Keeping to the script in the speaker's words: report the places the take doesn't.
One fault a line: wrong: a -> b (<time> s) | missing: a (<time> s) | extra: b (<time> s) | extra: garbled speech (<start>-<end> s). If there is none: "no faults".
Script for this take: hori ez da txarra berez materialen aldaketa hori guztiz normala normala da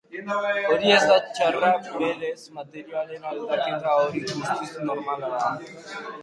missing: normala (5.3 s)